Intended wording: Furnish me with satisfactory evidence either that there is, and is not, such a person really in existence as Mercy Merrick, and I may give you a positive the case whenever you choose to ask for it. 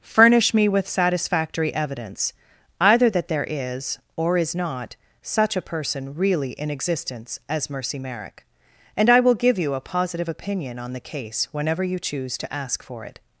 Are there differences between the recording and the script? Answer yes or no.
yes